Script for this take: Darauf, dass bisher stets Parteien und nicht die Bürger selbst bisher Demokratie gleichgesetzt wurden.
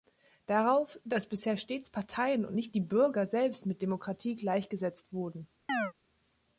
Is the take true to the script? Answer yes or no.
no